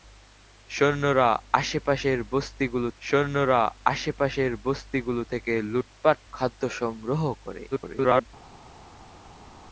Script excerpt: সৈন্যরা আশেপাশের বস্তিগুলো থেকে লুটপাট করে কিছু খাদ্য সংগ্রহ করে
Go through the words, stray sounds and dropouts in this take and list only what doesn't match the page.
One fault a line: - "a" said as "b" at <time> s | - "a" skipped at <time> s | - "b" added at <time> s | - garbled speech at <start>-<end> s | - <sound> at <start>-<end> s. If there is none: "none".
- "সৈন্যরা আশেপাশের বস্তিগুলো" added at 3.0 s
- "করে কিছু" skipped at 6.2 s
- garbled speech at 7.7-8.3 s